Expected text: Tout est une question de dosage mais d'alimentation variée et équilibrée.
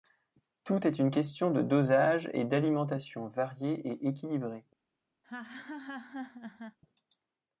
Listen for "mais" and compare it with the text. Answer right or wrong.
wrong